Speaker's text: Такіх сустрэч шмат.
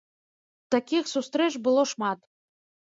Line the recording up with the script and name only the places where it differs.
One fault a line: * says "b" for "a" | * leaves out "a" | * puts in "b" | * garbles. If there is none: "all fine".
* puts in "было"